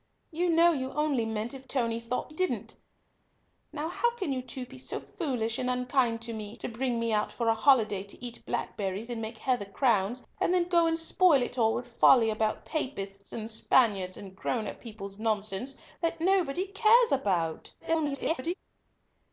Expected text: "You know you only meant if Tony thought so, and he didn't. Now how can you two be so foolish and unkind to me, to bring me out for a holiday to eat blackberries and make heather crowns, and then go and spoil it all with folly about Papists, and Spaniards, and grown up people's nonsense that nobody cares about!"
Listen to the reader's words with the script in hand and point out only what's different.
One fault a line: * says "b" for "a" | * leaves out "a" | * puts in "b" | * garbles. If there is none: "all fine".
* leaves out "so and he"
* garbles